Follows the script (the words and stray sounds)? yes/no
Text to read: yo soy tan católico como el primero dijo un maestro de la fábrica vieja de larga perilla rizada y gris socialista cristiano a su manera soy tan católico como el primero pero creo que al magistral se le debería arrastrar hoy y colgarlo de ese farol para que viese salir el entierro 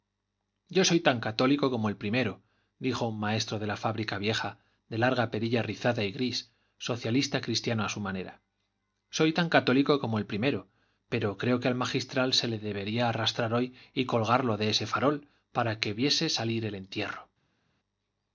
yes